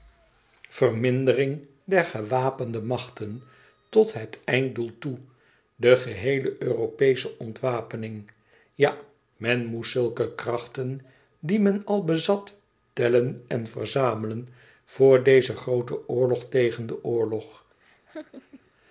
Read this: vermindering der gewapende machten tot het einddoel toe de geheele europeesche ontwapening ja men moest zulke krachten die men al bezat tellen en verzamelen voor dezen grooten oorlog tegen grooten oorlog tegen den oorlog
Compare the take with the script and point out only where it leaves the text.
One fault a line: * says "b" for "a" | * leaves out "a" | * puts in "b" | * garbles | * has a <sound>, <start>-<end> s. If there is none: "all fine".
* leaves out "grooten oorlog tegen"
* has a laugh, 17.8-18.7 s